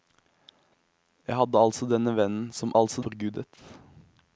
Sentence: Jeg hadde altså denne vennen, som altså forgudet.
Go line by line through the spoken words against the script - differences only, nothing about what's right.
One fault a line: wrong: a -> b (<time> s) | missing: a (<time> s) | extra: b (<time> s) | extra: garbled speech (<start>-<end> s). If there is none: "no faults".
no faults